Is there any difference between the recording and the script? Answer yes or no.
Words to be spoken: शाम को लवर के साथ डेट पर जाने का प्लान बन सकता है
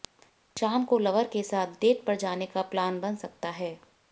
no